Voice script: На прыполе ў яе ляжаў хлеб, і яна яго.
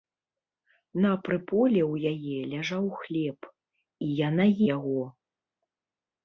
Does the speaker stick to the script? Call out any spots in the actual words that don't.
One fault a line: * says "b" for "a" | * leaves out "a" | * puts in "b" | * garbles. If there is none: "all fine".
all fine